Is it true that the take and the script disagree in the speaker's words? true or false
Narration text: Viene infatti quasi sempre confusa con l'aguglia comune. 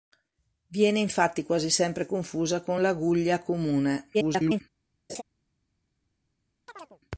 true